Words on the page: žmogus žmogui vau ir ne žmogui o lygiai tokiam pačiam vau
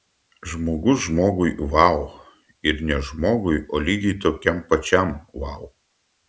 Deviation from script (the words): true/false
false